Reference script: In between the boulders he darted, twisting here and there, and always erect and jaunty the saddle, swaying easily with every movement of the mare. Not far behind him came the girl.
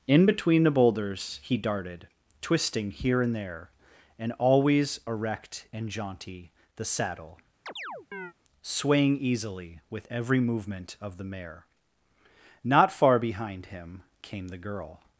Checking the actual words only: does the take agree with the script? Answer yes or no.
yes